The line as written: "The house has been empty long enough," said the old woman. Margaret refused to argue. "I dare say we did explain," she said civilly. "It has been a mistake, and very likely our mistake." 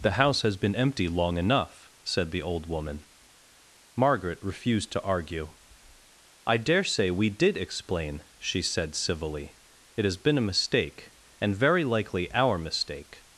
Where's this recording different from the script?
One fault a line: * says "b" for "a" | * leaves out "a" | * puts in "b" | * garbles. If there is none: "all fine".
all fine